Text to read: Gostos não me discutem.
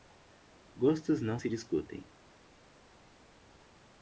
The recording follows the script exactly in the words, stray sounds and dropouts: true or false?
false